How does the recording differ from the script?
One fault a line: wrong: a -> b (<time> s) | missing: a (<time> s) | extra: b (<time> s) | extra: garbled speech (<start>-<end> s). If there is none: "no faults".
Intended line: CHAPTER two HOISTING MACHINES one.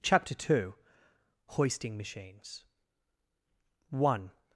no faults